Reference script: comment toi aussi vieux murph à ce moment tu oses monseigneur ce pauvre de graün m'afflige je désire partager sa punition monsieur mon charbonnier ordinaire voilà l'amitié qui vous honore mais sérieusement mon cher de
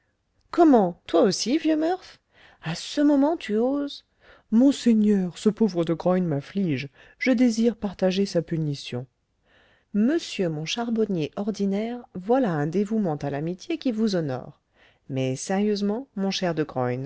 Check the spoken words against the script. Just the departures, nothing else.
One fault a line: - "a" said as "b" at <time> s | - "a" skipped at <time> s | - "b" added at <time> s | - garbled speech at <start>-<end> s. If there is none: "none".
- "un dévouement à" added at 12.5 s